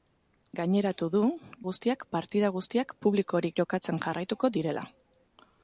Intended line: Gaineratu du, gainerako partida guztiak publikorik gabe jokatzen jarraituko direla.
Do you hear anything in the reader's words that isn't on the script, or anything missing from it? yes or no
yes